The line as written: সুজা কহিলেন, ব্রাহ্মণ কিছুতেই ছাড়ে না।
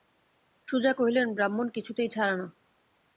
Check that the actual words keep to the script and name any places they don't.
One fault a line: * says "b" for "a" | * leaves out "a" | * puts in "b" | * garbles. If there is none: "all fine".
all fine